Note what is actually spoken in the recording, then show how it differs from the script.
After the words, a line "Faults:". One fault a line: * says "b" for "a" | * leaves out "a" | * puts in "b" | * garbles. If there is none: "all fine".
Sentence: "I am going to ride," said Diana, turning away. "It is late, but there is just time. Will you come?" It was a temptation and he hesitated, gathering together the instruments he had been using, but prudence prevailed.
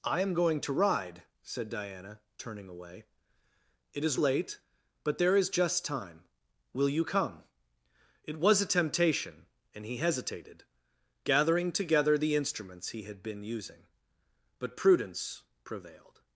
"I am going to ride," said Diana, turning away. "It is late, but there is just time. Will you come?" It was a temptation and he hesitated, gathering together the instruments he had been using, but prudence prevailed.
Faults:
all fine